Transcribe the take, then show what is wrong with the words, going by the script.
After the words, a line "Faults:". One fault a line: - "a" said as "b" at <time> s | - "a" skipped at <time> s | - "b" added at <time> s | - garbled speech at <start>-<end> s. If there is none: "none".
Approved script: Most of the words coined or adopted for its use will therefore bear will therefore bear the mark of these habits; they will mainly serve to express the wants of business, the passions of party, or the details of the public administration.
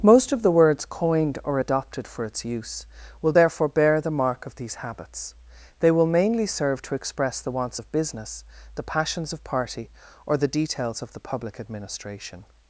Most of the words coined or adopted for its use will therefore bear the mark of these habits; they will mainly serve to express the wants of business, the passions of party, or the details of the public administration.
Faults:
- "will therefore bear" skipped at 4.0 s